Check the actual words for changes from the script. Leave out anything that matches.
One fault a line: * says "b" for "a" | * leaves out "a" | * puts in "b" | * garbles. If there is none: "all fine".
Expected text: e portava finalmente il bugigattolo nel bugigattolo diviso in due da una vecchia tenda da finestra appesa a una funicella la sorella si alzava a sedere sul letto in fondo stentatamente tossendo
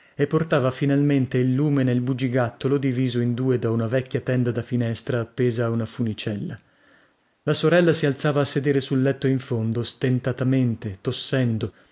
* says "lume" for "bugigattolo"